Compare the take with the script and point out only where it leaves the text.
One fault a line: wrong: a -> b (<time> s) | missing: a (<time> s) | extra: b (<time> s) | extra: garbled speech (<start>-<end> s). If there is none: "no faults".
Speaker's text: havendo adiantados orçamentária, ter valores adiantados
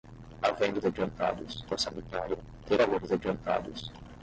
no faults